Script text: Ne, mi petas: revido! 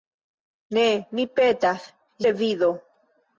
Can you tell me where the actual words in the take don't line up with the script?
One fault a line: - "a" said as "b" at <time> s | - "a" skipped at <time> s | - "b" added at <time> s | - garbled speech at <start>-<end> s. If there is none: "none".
none